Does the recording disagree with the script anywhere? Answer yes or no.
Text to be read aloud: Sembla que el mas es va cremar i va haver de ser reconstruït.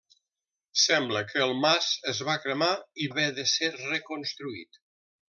yes